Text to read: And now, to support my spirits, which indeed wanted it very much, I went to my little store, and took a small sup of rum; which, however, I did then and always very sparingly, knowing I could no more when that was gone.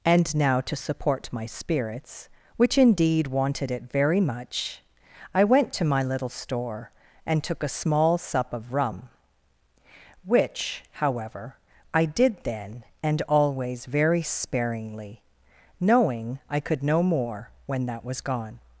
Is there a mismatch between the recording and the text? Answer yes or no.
no